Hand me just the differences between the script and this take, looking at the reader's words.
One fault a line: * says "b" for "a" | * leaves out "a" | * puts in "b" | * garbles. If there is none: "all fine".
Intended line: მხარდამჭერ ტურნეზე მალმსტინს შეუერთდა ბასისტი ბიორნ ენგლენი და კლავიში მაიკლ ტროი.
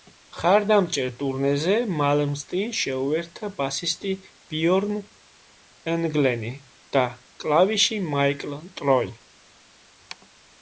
all fine